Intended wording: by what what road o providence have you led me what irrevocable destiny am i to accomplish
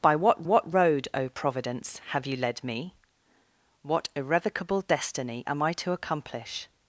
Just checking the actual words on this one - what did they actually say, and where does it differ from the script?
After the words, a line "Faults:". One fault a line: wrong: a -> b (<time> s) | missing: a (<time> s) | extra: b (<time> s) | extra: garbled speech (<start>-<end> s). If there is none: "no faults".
by what what road o providence have you led me what irrevocable destiny am i to accomplish
Faults:
no faults